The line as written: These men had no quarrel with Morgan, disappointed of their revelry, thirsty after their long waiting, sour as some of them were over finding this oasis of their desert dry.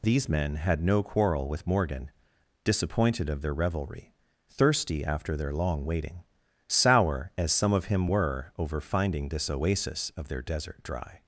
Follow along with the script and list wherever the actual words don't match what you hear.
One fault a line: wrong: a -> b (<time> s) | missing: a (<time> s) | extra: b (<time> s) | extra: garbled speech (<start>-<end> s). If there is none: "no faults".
wrong: them -> him (7.8 s)